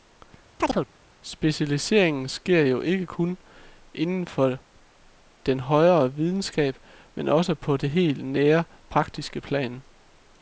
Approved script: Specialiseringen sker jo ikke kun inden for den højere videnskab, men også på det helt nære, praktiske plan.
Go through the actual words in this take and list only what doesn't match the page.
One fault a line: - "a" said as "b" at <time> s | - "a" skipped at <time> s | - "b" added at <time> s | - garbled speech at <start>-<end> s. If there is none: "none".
none